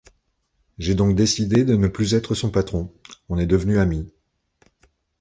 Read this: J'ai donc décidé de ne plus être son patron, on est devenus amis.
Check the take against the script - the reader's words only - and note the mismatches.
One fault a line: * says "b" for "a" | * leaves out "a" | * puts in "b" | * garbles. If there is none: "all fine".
all fine